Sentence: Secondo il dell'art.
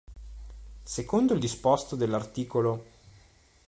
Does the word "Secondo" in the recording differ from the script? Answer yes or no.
no